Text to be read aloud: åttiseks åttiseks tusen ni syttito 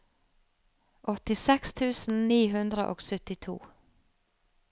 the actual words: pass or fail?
fail